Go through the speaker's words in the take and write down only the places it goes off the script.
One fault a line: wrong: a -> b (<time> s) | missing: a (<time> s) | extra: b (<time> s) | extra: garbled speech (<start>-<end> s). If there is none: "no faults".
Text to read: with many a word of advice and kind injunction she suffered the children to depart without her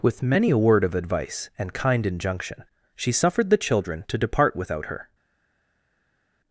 no faults